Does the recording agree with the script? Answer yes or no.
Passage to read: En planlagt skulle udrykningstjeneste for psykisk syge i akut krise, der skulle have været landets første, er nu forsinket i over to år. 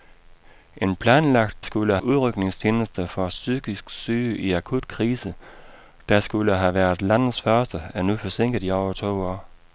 yes